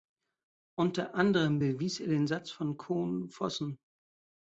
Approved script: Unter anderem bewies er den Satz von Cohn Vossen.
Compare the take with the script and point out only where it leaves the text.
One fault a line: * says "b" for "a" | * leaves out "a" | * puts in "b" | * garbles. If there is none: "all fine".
all fine